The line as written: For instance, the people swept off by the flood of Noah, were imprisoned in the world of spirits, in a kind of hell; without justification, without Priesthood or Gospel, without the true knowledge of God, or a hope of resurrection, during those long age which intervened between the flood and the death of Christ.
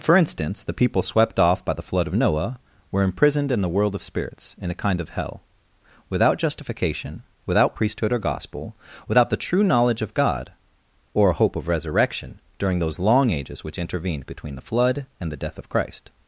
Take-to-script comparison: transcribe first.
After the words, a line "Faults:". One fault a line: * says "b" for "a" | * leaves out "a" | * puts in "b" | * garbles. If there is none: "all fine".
For instance, the people swept off by the flood of Noah, were imprisoned in the world of spirits, in a kind of hell; without justification, without Priesthood or Gospel, without the true knowledge of God, or a hope of resurrection, during those long ages which intervened between the flood and the death of Christ.
Faults:
* says "ages" for "age"